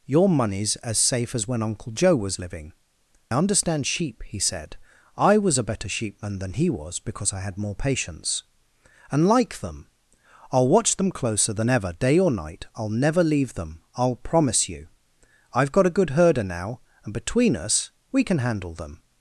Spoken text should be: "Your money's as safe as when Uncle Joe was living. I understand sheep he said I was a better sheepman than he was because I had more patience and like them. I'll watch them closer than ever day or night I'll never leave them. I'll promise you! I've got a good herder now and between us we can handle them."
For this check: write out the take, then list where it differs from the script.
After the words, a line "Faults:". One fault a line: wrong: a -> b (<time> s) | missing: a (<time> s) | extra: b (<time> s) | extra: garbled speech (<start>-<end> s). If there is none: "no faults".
"Your money's as safe as when Uncle Joe was living. understand sheep he said I was a better sheepman than he was because I had more patience and like them. I'll watch them closer than ever day or night I'll never leave them. I'll promise you! I've got a good herder now and between us we can handle them."
Faults:
missing: I (2.7 s)